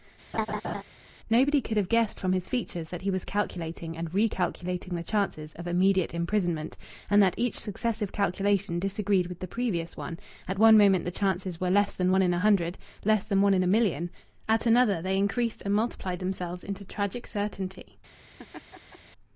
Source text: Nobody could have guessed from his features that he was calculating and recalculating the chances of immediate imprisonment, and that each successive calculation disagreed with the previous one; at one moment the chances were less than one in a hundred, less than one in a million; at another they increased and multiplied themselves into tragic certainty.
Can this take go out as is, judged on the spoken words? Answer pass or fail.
pass